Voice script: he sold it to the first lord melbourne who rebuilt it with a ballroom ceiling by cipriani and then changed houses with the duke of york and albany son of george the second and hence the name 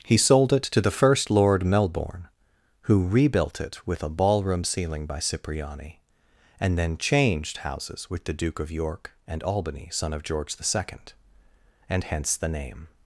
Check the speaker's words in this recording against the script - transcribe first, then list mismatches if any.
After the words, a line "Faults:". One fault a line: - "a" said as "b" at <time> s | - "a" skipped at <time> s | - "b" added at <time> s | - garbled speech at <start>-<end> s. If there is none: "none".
he sold it to the first lord melbourne who rebuilt it with a ballroom ceiling by cipriani and then changed houses with the duke of york and albany son of george the second and hence the name
Faults:
none